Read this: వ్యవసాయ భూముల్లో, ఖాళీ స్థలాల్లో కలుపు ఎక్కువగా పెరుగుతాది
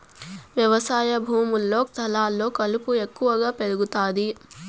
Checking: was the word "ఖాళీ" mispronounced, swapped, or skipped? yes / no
yes